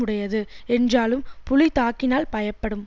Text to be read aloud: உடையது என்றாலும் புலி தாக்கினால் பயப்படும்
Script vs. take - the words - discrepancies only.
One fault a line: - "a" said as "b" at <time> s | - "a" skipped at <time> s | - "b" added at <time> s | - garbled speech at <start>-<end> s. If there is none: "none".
none